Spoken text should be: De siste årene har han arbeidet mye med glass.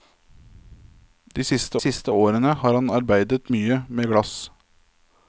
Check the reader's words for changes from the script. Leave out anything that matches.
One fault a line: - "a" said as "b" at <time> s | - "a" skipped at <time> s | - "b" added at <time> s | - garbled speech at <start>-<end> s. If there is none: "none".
- "siste" added at 1.8 s